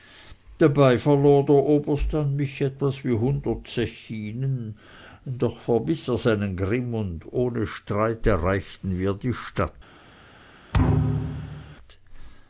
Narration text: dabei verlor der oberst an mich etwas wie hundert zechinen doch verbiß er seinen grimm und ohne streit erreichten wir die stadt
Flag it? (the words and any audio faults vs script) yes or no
yes